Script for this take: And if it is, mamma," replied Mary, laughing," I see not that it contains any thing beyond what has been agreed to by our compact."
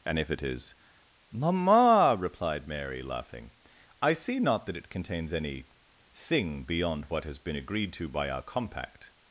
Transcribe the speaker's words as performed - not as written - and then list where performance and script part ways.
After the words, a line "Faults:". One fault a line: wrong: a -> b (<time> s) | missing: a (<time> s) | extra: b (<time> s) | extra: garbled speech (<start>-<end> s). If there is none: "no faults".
And if it is, mamma," replied Mary, laughing," I see not that it contains any thing beyond what has been agreed to by our compact."
Faults:
no faults